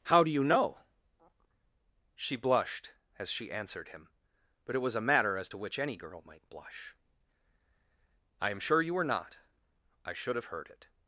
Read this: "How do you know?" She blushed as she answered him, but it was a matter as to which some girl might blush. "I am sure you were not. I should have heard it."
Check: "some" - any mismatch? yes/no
yes